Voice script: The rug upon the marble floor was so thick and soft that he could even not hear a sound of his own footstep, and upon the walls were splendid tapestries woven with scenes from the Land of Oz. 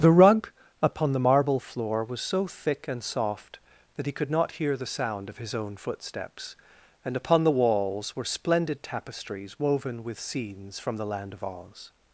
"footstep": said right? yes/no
no